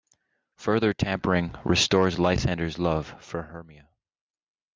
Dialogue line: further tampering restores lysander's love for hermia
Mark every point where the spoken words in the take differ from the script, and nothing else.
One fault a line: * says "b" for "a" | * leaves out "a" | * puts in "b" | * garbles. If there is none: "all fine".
all fine